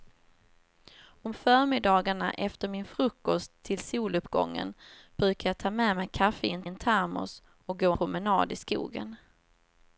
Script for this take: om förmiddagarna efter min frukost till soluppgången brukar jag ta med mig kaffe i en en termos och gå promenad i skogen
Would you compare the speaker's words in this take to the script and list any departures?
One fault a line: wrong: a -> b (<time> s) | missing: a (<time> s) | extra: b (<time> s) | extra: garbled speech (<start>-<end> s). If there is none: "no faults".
no faults